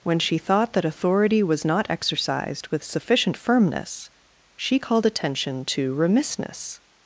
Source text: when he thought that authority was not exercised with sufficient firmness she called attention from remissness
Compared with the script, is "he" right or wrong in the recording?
wrong